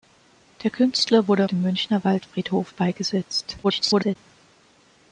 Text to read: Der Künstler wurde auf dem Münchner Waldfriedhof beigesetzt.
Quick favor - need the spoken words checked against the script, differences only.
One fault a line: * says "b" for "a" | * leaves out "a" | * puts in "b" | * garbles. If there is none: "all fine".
* leaves out "auf"
* garbles